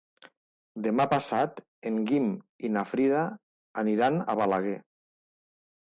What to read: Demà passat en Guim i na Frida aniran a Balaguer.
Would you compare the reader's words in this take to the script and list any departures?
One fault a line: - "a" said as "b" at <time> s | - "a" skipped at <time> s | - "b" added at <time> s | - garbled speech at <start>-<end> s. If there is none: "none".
none